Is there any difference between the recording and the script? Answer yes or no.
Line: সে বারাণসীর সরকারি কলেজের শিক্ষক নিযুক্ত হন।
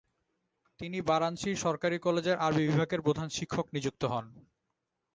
yes